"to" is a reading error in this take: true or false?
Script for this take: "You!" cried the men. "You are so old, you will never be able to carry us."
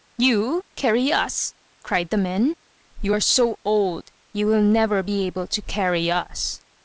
false